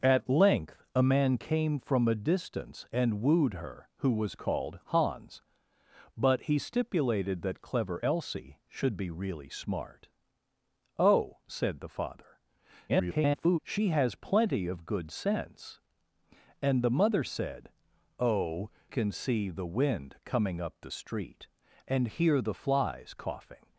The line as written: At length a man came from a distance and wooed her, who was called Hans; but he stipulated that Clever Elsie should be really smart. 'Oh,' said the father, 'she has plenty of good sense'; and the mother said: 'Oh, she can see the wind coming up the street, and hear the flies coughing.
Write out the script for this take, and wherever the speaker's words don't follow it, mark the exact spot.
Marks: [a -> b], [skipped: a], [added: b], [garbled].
At length a man came from a distance and wooed her, who was called Hans; but he stipulated that Clever Elsie should be really smart. 'Oh,' said the father, [garbled] 'she has plenty of good sense'; and the mother said: 'Oh, [skipped: she] can see the wind coming up the street, and hear the flies coughing.